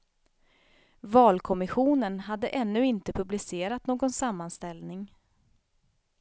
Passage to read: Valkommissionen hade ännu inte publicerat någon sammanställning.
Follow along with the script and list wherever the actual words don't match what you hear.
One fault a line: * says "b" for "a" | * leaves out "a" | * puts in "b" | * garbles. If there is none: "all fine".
all fine